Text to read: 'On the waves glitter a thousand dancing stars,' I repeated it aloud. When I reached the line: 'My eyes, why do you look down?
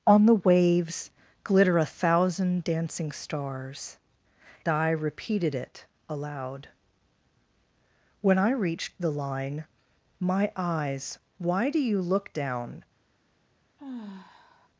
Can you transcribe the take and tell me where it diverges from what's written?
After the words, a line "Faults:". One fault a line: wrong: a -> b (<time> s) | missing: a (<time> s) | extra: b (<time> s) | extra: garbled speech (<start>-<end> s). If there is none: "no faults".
'On the waves glitter a thousand dancing stars,' I repeated it aloud. When I reached the line: 'My eyes, why do you look down?
Faults:
no faults